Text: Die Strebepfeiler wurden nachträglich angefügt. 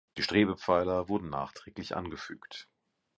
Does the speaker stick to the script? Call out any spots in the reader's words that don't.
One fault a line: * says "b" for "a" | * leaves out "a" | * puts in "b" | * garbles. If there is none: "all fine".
all fine